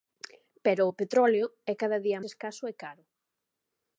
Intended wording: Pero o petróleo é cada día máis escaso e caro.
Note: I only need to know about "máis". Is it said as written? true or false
false